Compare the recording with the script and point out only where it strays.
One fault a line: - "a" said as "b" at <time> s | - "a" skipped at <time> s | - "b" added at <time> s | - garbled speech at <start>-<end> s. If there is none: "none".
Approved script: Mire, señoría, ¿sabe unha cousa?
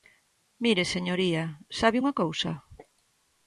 none